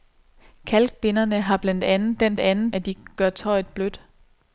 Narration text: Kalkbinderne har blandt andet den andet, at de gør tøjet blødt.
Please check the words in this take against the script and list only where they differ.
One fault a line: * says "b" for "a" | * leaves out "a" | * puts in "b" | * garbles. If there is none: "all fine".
all fine